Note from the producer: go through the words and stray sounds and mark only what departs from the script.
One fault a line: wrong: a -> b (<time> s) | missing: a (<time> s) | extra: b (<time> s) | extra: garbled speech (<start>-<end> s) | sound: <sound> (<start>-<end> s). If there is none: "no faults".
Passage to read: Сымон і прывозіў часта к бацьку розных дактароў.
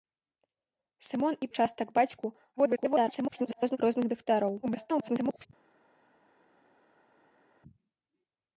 missing: прывозіў (1.5 s)
extra: garbled speech (2.6-3.8 s)
extra: garbled speech (4.6-5.5 s)